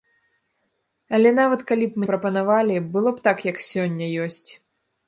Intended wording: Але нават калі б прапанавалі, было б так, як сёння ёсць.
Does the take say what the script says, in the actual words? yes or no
yes